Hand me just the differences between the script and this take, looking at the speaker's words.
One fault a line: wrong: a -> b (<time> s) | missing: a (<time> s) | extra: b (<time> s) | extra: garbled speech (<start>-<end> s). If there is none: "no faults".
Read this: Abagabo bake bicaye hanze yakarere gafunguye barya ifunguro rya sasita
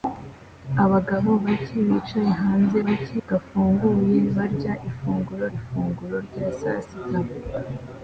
wrong: yakarere -> bake (2.8 s)
extra: ifunguro (5.6 s)